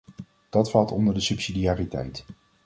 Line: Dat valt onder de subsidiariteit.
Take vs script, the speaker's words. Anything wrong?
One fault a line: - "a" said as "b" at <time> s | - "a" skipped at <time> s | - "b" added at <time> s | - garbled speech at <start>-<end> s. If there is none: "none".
none